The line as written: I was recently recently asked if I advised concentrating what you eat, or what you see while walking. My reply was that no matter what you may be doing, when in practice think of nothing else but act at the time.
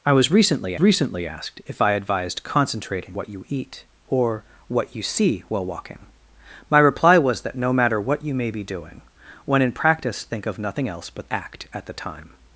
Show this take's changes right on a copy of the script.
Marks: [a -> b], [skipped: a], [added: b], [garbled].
I was recently recently asked if I advised concentrating what you eat, or what you see while walking. My reply was that no matter what you may be doing, when in practice think of nothing else but act at the time.